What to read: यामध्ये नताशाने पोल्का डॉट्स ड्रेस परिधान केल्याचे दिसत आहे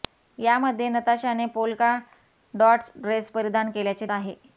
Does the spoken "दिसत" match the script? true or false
false